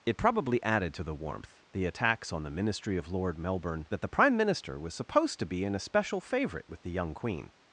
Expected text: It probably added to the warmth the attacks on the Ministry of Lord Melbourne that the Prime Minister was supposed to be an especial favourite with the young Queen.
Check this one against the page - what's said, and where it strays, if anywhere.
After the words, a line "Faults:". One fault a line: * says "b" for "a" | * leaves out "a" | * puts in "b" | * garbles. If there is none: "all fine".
It probably added to the warmth the attacks on the Ministry of Lord Melbourne that the Prime Minister was supposed to be an especial favourite with the young Queen.
Faults:
all fine